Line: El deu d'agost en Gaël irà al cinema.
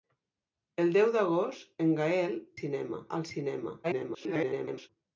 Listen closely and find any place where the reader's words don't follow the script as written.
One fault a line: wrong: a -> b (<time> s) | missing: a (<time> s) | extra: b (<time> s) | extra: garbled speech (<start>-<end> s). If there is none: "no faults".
wrong: irà -> cinema (2.6 s)
extra: garbled speech (3.8-4.9 s)